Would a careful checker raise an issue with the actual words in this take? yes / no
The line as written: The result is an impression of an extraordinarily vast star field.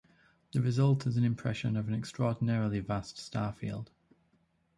no